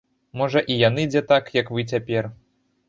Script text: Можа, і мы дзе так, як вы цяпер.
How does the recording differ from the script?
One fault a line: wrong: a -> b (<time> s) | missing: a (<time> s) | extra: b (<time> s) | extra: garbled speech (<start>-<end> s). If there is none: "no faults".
wrong: мы -> яны (0.9 s)